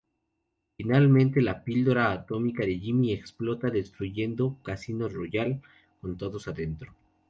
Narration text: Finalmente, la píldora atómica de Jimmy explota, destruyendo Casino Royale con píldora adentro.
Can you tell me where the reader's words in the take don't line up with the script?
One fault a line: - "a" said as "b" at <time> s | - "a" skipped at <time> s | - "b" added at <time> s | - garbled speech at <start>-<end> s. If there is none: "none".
- "píldora" said as "todos" at 6.2 s